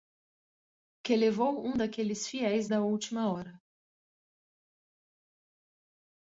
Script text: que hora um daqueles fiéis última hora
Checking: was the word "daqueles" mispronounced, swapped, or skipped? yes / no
no